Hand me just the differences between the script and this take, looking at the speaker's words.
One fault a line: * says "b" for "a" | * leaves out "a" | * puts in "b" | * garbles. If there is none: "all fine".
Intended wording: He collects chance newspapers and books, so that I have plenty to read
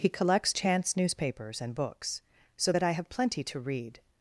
all fine